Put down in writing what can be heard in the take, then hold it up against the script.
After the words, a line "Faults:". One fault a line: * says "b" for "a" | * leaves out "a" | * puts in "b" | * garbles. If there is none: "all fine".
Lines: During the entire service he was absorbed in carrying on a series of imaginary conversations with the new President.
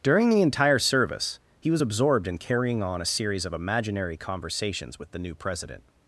During the entire service he was absorbed in carrying on a series of imaginary conversations with the new President.
Faults:
all fine